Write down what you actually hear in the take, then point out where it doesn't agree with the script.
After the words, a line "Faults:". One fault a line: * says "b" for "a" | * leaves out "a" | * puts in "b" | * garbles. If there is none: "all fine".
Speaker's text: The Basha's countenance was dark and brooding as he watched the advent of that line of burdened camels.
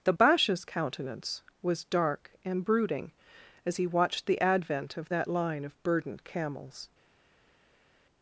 The Basha's countenance was dark and brooding as he watched the advent of that line of burdened camels.
Faults:
all fine